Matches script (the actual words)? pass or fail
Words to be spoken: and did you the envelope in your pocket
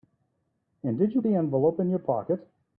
pass